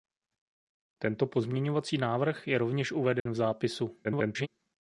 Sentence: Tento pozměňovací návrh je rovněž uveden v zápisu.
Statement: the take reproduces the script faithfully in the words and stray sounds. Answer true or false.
false